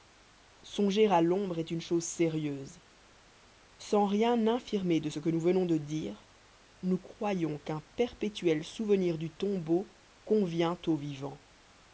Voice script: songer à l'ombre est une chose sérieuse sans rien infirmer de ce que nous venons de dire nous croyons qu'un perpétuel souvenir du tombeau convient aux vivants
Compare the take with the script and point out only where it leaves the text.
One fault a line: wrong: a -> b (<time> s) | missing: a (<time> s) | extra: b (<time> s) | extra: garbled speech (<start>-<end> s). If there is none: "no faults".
no faults